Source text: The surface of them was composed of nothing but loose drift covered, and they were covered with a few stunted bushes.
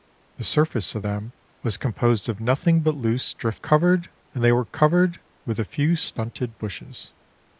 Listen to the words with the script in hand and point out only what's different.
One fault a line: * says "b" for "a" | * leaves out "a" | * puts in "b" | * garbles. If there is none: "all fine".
all fine